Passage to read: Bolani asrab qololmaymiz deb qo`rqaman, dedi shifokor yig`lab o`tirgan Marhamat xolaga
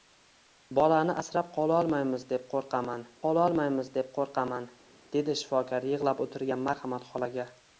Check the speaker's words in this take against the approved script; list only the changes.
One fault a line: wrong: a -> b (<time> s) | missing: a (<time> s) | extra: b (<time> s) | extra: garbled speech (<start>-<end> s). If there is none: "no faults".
extra: qololmaymiz deb qo`rqaman (3.2 s)